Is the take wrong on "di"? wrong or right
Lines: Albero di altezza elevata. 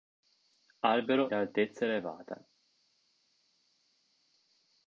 wrong